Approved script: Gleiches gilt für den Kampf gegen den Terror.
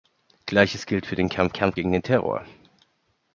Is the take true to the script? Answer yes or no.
no